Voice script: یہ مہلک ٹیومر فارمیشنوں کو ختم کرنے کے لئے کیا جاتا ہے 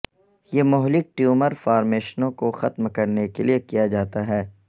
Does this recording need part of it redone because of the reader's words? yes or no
no